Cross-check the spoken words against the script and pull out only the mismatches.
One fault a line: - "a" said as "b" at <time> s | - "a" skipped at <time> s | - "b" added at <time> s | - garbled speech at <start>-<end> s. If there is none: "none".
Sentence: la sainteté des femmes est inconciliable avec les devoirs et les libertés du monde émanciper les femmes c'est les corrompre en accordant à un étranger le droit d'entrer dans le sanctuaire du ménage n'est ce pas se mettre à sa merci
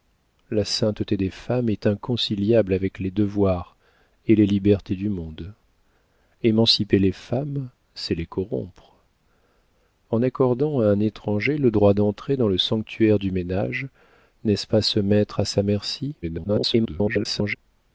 - garbled speech at 16.2-17.6 s